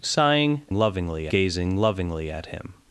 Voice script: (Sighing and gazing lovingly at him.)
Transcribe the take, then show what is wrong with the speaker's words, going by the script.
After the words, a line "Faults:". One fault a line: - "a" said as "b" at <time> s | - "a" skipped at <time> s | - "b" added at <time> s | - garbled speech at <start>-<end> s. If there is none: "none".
(Sighing lovingly gazing lovingly at him.)
Faults:
- "and" said as "lovingly" at 0.7 s